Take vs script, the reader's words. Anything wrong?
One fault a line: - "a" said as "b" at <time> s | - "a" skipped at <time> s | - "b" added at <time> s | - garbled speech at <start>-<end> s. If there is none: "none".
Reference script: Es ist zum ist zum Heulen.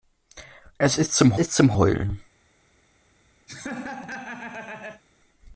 none